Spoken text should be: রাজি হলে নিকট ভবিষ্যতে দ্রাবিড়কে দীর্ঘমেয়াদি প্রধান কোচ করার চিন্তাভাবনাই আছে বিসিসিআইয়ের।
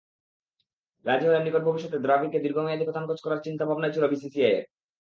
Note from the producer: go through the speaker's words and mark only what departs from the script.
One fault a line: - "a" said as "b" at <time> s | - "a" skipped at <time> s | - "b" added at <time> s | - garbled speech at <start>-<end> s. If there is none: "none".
- "আছে" said as "ছিল" at 3.9 s